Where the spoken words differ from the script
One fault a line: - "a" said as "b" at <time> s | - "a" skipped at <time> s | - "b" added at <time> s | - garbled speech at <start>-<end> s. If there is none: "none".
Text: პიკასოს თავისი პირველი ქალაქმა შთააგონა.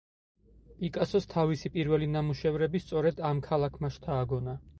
- "ნამუშევრები სწორედ ამ" added at 2.1 s